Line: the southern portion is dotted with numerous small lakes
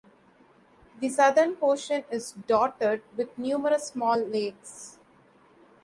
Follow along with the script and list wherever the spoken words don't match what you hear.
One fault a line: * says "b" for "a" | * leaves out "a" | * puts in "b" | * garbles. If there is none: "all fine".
all fine